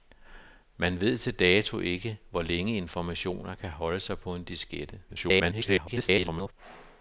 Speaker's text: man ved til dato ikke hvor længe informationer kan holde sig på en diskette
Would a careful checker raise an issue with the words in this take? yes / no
yes